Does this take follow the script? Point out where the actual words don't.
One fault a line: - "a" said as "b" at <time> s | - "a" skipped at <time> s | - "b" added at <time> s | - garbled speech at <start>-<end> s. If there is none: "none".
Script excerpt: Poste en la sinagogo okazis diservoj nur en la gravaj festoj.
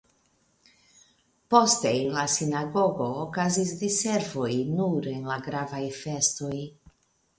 none